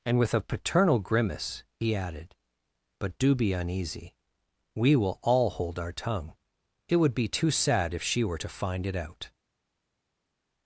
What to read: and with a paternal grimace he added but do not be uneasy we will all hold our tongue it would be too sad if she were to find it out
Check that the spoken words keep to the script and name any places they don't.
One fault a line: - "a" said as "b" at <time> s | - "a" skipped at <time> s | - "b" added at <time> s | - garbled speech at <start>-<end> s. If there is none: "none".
- "not" skipped at 3.4 s